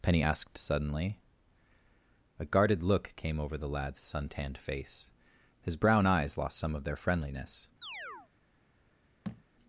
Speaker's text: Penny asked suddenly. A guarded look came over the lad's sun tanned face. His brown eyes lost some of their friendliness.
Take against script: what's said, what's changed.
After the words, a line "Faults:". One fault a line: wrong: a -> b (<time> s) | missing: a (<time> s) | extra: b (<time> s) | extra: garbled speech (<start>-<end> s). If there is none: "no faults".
Penny asked suddenly. A guarded look came over the lad's sun tanned face. His brown eyes lost some of their friendliness.
Faults:
no faults